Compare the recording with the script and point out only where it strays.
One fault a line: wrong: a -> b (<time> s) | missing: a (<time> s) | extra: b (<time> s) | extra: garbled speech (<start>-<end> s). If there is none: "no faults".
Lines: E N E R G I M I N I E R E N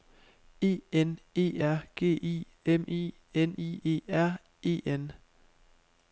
no faults